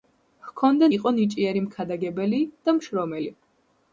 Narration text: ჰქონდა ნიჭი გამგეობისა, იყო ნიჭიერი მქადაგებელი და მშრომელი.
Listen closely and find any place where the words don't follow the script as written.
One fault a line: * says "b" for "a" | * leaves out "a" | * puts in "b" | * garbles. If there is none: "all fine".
* leaves out "ნიჭი გამგეობისა"